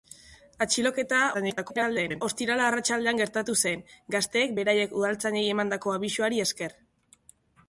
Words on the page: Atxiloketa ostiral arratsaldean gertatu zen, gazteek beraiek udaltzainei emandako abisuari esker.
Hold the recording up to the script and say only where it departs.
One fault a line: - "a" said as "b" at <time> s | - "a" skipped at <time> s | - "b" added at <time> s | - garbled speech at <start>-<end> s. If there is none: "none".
- garbled speech at 1.3-2.2 s